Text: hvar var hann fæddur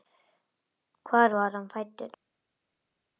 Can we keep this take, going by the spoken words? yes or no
yes